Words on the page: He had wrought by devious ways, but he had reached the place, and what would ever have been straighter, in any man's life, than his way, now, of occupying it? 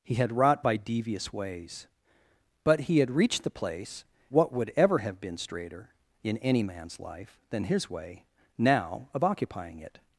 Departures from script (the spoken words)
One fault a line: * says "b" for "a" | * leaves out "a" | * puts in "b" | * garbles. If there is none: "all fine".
* leaves out "and"